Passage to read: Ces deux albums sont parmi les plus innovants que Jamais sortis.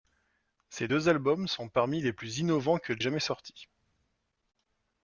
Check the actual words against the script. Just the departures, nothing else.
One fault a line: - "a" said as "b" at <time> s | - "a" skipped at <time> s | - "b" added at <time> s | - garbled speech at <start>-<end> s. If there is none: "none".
none